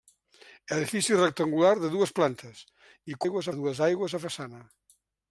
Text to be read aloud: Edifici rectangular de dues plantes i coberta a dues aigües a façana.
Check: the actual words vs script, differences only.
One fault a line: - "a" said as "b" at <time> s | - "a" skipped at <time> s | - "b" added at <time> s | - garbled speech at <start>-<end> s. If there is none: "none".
- "coberta" said as "aigües" at 3.2 s